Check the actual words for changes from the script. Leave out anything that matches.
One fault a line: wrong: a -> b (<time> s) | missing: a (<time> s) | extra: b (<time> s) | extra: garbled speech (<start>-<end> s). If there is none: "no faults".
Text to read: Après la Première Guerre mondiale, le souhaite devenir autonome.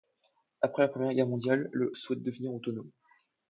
no faults